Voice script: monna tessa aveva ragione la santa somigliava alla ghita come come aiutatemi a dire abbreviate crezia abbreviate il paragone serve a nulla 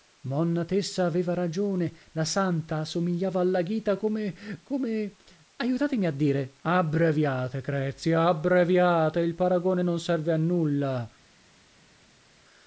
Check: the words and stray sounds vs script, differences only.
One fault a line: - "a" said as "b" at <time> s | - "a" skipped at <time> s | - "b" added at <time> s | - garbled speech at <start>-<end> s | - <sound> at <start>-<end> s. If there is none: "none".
- "non" added at 9.8 s